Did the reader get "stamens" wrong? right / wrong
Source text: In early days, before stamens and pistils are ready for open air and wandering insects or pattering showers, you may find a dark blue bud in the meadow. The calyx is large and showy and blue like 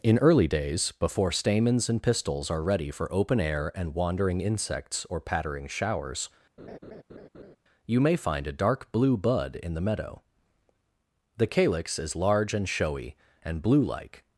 right